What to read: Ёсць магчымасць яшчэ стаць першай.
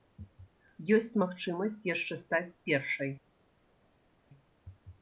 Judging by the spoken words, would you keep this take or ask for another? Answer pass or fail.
pass